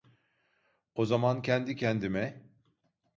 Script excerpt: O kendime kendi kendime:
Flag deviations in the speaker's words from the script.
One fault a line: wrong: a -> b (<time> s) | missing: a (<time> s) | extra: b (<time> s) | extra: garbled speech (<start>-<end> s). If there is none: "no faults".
wrong: kendime -> zaman (1.1 s)